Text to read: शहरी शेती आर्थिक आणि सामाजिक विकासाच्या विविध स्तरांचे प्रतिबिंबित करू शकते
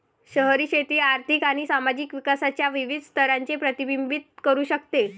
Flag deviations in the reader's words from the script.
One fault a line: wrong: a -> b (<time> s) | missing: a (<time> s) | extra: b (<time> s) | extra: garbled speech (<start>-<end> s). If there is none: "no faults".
no faults